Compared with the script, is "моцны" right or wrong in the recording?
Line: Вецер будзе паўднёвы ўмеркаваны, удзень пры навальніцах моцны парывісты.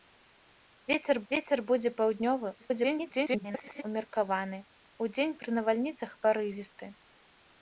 wrong